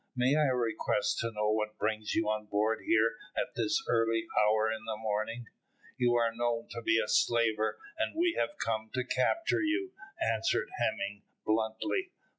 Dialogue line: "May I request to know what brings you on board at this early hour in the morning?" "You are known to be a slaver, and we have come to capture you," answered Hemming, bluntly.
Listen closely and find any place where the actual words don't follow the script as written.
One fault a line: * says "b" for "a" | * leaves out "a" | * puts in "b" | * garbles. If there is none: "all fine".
* puts in "here"